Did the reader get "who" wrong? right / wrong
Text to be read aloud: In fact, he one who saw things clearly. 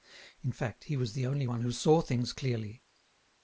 right